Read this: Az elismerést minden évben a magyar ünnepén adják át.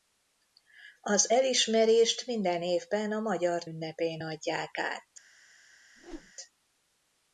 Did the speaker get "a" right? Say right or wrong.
right